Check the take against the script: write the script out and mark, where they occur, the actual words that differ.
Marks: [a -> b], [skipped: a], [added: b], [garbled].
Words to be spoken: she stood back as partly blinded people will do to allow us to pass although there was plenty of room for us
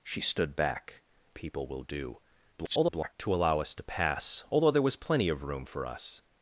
she stood back [skipped: as partly blinded] people will do [garbled] to allow us to pass although there was plenty of room for us